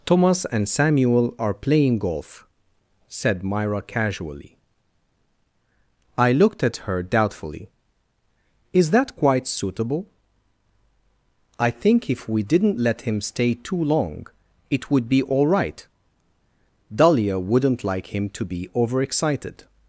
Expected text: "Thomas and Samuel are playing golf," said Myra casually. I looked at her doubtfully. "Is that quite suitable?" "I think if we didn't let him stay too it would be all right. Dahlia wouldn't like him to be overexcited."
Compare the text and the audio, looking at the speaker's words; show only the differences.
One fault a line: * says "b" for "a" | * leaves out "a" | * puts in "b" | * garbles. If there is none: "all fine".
* puts in "long"